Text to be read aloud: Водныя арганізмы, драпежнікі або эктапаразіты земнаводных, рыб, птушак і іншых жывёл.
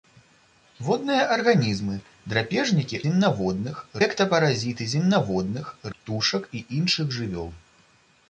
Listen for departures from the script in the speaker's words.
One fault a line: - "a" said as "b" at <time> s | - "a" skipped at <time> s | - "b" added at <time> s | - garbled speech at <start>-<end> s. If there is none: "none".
- "або" said as "земнаводных" at 3.1 s
- "рыб" skipped at 5.8 s